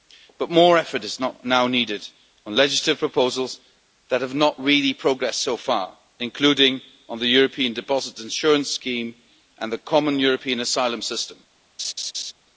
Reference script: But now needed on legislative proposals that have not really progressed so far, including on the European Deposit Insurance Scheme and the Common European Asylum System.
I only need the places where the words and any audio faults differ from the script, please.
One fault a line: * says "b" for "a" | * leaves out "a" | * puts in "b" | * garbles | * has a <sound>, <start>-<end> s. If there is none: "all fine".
* puts in "more effort is"
* has a laugh, 11.8-12.3 s